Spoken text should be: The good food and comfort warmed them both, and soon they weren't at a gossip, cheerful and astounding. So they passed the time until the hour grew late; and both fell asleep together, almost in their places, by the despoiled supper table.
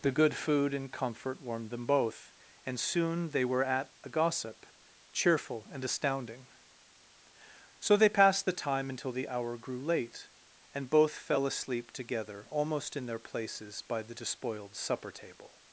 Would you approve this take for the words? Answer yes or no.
no